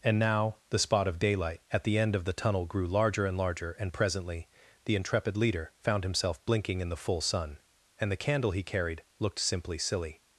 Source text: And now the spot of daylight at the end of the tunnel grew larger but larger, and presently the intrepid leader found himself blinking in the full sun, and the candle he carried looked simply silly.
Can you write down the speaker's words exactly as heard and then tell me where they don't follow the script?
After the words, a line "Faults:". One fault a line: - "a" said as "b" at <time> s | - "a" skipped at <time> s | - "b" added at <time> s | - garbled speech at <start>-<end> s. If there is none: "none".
And now the spot of daylight at the end of the tunnel grew larger and larger, and presently the intrepid leader found himself blinking in the full sun, and the candle he carried looked simply silly.
Faults:
- "but" said as "and" at 3.2 s